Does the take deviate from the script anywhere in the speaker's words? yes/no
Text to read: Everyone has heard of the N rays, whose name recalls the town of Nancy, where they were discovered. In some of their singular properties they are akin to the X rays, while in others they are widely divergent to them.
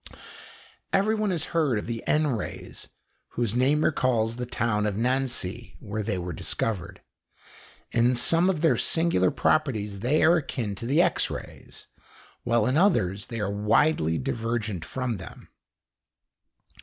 yes